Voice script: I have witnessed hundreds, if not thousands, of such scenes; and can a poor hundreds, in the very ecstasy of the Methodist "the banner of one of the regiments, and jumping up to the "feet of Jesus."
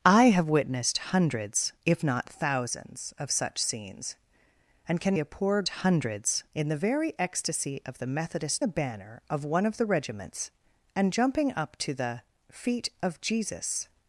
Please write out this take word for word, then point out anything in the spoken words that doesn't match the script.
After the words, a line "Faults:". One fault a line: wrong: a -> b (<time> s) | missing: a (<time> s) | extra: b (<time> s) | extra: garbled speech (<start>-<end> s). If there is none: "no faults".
I have witnessed hundreds, if not thousands, of such scenes; and can a poor hundreds, in the very ecstasy of the Methodist "the banner of one of the regiments, and jumping up to the "feet of Jesus."
Faults:
no faults